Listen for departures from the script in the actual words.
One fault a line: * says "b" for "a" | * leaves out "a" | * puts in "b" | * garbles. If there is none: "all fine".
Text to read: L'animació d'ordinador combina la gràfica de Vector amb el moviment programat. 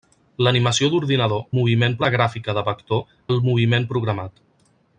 * says "moviment" for "combina"
* leaves out "amb"